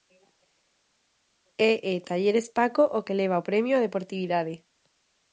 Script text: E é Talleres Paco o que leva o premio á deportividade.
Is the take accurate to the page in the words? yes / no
yes